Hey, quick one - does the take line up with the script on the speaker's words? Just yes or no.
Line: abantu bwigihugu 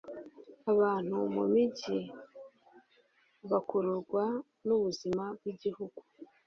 no